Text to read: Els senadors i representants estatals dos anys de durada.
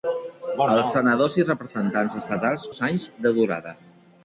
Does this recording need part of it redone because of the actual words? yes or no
no